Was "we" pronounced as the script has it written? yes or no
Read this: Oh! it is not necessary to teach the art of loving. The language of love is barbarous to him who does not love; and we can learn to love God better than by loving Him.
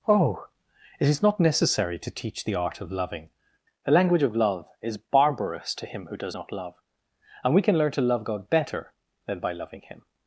yes